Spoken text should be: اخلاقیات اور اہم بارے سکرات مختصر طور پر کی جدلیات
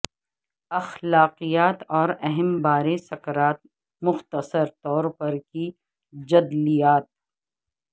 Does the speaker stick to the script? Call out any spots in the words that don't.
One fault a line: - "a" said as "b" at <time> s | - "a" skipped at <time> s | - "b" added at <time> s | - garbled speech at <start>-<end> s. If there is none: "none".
none